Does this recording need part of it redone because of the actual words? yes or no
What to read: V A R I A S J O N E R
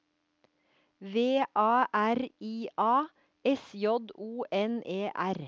no